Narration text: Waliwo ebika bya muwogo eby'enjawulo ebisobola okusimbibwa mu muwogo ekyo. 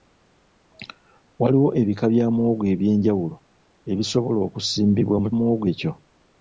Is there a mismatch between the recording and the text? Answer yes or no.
no